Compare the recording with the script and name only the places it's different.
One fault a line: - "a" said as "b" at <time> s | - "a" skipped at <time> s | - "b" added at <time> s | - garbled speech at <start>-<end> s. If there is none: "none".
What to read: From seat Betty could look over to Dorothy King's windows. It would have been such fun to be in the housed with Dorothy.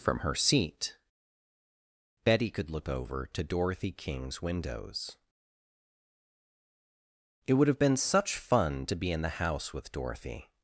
- "her" added at 0.2 s
- "housed" said as "house" at 9.4 s